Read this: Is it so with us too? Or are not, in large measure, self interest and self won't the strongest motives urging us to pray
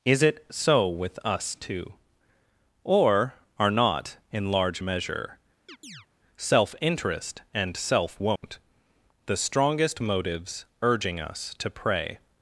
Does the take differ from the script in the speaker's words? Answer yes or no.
no